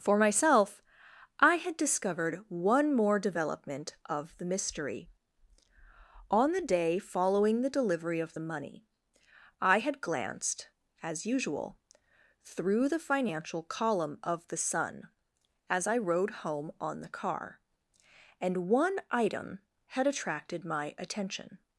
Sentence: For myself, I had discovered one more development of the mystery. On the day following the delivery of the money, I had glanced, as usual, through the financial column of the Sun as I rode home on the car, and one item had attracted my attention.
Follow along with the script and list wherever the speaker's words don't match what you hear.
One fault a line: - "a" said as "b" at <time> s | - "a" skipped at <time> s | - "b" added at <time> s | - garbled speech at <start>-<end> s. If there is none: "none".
none